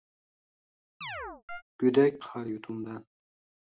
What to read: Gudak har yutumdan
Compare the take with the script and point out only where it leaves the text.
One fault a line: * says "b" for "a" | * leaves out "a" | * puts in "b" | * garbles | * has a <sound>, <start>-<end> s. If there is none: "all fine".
* has a chirp, 1.0-1.6 s